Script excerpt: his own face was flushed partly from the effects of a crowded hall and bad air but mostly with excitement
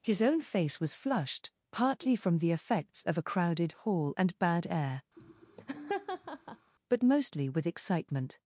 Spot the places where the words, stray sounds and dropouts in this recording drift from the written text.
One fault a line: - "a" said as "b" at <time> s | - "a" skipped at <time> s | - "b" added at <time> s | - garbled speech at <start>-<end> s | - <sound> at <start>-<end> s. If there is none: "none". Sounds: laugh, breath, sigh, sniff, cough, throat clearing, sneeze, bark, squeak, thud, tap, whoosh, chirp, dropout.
- laugh at 5.2-6.7 s